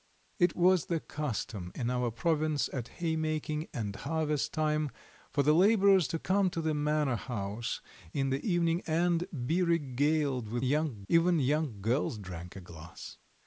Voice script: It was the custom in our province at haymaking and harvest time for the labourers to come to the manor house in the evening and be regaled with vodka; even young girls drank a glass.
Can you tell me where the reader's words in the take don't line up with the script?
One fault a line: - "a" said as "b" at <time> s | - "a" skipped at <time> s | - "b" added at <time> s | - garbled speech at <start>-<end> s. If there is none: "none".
- "vodka" said as "young" at 10.6 s